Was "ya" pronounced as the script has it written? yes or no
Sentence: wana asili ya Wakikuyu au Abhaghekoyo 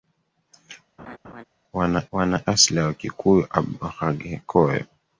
yes